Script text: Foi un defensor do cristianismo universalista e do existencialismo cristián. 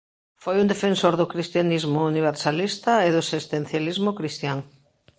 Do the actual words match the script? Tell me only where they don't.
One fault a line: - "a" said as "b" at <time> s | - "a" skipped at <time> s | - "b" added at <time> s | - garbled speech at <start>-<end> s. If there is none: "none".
none